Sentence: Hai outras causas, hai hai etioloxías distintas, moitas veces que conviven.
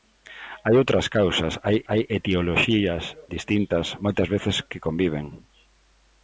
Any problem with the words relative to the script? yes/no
no